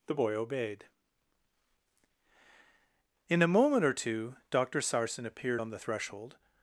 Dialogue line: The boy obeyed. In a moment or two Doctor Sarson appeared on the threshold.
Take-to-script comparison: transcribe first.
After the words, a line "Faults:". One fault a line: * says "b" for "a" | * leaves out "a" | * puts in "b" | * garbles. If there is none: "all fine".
The boy obeyed. In a moment or two Doctor Sarson appeared on the threshold.
Faults:
all fine